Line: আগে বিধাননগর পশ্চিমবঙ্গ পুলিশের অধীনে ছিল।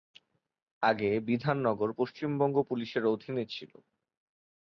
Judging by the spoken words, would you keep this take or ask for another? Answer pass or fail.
pass